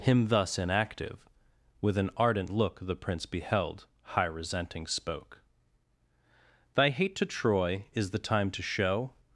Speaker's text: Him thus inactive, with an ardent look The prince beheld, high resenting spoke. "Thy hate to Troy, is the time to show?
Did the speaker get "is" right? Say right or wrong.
right